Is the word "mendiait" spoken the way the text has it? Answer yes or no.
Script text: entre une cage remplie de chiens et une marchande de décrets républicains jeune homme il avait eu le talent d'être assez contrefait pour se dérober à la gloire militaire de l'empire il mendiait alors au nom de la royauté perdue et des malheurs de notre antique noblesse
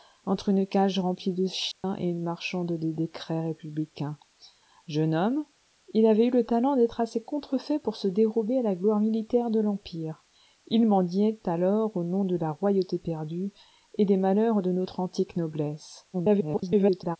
yes